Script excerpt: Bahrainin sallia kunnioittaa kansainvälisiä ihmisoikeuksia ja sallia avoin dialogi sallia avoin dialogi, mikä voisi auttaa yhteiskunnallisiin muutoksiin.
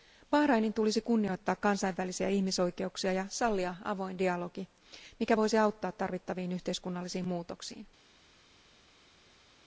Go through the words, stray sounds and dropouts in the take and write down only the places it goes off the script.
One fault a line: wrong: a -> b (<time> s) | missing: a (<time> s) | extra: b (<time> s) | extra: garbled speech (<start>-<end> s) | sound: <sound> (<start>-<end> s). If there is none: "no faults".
wrong: sallia -> tulisi (0.7 s)
missing: sallia avoin dialogi (4.7 s)
extra: tarvittaviin (5.9 s)